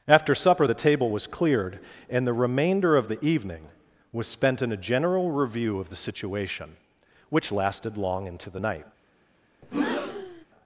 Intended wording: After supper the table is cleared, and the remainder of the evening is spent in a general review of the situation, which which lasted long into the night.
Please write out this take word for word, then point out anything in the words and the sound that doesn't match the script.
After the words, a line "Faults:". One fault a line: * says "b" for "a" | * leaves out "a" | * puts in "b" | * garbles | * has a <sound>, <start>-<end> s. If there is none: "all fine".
After supper the table was cleared, and the remainder of the evening was spent in a general review of the situation, which lasted long into the night.
Faults:
* says "was" for "is"
* says "was" for "is"
* leaves out "which"
* has a breath, 9.6-10.5 s